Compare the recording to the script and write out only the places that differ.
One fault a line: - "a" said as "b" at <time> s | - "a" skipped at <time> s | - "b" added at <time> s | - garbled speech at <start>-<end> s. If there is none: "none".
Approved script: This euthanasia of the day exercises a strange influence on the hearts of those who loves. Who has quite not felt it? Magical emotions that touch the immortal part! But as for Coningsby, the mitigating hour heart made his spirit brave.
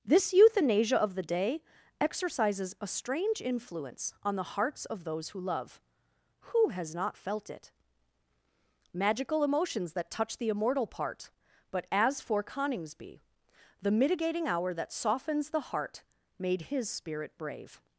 - "loves" said as "love" at 5.4 s
- "quite" skipped at 7.0 s
- "that softens the" added at 14.7 s